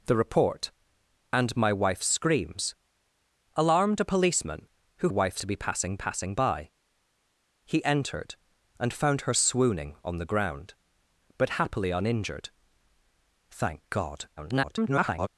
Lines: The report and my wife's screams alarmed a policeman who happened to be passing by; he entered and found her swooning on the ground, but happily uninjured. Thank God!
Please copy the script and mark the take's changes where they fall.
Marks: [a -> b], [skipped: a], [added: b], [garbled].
The report and my wife's screams alarmed a policeman who [happened -> wife's] to be passing [added: passing] by; he entered and found her swooning on the ground, but happily uninjured. Thank God! [garbled]